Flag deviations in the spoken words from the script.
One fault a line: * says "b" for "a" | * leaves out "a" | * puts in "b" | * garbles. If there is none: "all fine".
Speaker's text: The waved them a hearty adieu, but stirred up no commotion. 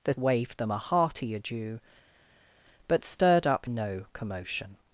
all fine